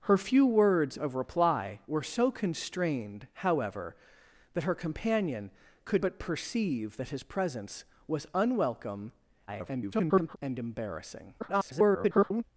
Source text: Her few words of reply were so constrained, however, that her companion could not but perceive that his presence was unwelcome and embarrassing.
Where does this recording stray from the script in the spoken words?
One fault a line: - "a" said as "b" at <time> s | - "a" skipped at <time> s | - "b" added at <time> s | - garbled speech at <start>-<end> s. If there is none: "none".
- "not" skipped at 6.0 s
- garbled speech at 9.5-10.4 s
- garbled speech at 11.4-12.4 s